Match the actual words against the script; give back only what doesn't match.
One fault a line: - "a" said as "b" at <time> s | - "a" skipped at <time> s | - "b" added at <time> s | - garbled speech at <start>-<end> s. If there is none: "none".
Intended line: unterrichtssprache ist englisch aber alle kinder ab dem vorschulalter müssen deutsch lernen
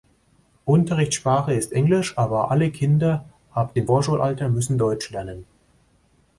none